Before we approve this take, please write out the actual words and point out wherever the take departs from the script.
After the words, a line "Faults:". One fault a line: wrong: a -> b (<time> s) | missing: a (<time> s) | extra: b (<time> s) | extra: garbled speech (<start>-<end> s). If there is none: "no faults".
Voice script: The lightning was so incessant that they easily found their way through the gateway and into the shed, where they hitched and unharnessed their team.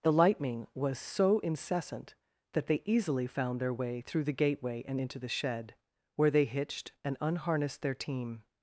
The lightning was so incessant that they easily found their way through the gateway and into the shed, where they hitched and unharnessed their team.
Faults:
no faults